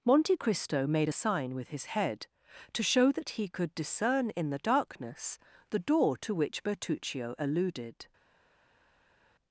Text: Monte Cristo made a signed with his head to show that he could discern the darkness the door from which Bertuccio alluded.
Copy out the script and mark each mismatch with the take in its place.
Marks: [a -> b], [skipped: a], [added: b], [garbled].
Monte Cristo made a [signed -> sign] with his head to show that he could discern [added: in] the darkness the door [from -> to] which Bertuccio alluded.